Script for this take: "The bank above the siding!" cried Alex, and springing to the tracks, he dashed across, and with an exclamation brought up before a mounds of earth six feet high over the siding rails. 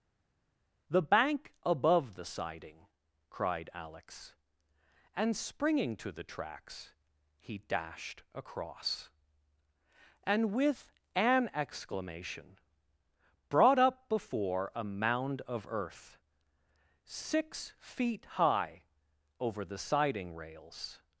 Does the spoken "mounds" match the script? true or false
false